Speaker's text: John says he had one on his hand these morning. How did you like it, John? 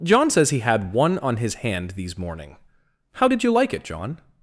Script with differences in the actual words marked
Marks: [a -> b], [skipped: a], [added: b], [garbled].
John says he had one on his hand these morning. How did you like it, John?